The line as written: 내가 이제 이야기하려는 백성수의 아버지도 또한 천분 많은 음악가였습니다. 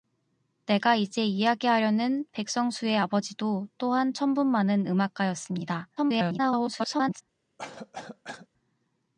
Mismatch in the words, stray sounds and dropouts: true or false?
true